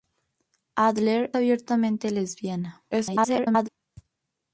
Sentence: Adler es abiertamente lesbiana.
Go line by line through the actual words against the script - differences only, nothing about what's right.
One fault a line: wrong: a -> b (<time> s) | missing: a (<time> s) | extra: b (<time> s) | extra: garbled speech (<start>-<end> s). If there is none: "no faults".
missing: es (1.3 s)
extra: garbled speech (2.9-3.7 s)